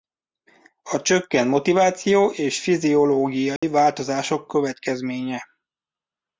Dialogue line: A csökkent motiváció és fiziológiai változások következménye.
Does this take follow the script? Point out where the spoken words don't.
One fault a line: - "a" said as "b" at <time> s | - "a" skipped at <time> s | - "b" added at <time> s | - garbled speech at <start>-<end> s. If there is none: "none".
none